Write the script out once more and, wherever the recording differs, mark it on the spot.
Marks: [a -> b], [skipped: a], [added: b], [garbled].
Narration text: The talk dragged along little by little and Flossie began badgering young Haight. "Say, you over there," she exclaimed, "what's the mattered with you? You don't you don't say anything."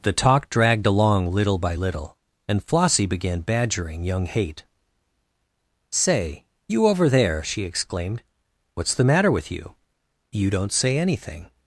The talk dragged along little by little and Flossie began badgering young Haight. "Say, you over there," she exclaimed, "what's the [mattered -> matter] with you? You don't [skipped: you don't] say anything."